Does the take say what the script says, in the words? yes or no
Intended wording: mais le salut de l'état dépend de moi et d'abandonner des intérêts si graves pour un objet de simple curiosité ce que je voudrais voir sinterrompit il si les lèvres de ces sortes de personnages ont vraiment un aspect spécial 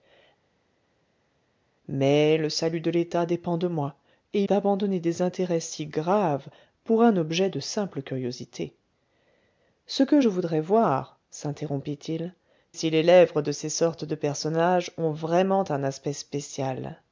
yes